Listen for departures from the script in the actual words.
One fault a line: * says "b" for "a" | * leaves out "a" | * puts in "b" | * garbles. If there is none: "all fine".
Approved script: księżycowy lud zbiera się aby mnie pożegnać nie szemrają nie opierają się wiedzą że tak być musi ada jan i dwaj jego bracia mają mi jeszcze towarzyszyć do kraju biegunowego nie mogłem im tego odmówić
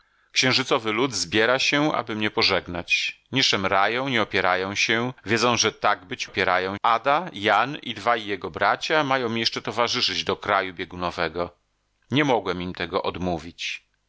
* says "opierają" for "musi"